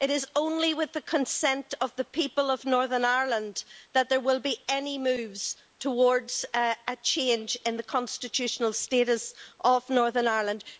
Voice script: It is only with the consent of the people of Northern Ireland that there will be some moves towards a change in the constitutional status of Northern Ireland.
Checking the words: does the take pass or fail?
fail